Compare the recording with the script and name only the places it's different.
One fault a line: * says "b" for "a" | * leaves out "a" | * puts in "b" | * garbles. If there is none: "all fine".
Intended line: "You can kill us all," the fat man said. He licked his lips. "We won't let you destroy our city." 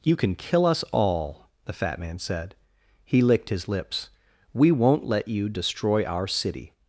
all fine